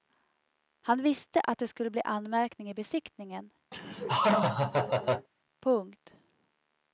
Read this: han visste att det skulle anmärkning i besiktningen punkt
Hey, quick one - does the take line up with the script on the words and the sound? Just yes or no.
no